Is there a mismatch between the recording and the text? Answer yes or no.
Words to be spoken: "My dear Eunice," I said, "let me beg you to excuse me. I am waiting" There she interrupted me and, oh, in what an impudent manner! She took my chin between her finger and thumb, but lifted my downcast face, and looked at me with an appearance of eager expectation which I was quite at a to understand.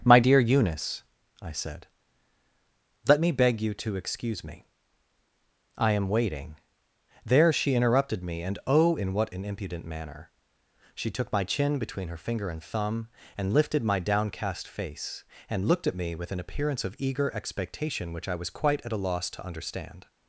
yes